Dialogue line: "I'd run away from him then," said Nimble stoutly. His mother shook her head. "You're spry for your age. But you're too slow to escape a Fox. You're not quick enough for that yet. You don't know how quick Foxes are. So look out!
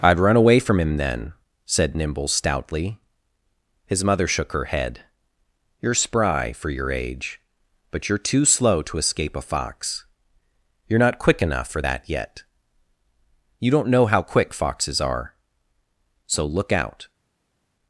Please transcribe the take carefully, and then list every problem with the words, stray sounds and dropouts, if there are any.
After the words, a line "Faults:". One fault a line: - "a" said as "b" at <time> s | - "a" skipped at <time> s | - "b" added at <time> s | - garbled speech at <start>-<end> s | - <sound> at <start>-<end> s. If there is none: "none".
"I'd run away from him then," said Nimble stoutly. His mother shook her head. "You're spry for your age. But you're too slow to escape a Fox. You're not quick enough for that yet. You don't know how quick Foxes are. So look out!
Faults:
none